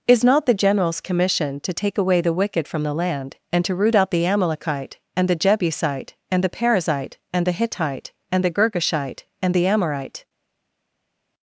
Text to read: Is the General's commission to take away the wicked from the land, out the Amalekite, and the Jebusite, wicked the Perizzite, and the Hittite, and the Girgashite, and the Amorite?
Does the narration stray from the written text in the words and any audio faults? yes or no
yes